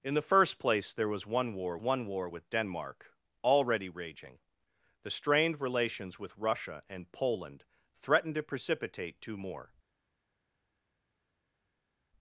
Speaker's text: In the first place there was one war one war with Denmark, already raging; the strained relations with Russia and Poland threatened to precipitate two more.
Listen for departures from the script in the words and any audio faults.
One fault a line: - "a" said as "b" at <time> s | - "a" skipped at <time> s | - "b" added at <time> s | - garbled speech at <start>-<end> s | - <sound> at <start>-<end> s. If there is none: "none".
none